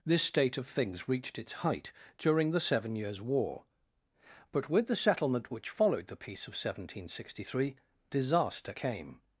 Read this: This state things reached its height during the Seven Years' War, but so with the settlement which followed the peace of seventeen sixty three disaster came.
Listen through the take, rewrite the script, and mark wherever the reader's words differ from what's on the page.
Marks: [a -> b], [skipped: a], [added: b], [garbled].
This state [added: of] things reached its height during the Seven Years' War, but [skipped: so] with the settlement which followed the peace of seventeen sixty three disaster came.